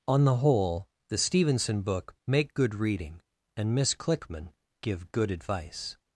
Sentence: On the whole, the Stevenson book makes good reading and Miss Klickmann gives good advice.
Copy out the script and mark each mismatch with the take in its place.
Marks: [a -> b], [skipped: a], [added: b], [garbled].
On the whole, the Stevenson book [makes -> make] good reading and Miss Klickmann [gives -> give] good advice.